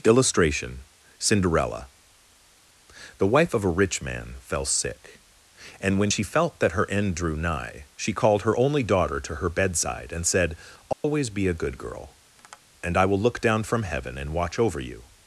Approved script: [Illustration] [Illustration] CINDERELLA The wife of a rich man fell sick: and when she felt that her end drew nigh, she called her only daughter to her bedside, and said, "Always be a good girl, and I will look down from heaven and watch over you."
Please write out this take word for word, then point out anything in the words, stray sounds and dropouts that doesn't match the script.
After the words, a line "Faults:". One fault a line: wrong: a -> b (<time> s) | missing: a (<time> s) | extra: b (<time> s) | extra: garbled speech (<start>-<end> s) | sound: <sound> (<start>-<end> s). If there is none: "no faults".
[Illustration] CINDERELLA The wife of a rich man fell sick: and when she felt that her end drew nigh, she called her only daughter to her bedside, and said, "Always be a good girl, and I will look down from heaven and watch over you."
Faults:
missing: Illustration (0.8 s)
sound: dropout (10.9-11.0 s)
sound: tap (12.4-12.6 s)